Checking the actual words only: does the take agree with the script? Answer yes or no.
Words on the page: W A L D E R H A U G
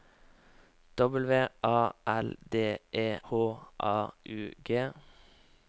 no